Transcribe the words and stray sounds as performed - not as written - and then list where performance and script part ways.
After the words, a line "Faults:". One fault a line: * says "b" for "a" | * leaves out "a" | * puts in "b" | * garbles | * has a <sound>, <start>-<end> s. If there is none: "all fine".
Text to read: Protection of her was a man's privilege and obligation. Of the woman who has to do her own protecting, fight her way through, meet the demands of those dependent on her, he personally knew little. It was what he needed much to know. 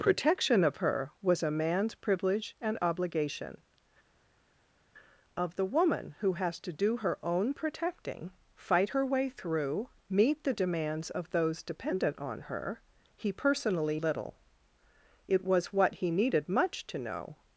Protection of her was a man's privilege and obligation. Of the woman who has to do her own protecting, fight her way through, meet the demands of those dependent on her, he personally little. It was what he needed much to know.
Faults:
* leaves out "knew"